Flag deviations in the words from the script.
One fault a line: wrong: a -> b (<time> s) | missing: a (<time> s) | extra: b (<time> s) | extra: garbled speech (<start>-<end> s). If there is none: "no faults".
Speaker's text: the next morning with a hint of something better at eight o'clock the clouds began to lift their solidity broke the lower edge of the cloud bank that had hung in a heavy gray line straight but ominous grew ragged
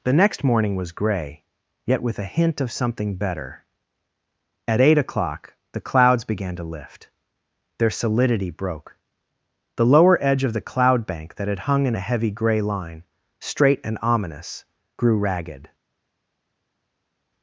extra: was gray yet (0.8 s)
wrong: but -> and (13.8 s)